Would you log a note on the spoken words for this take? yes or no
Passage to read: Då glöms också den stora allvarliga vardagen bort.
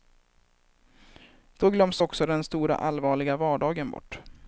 no